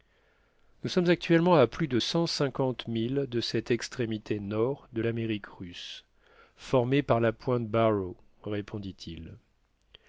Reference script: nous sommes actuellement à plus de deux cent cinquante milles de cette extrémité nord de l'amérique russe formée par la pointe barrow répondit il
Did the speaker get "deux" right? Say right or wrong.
wrong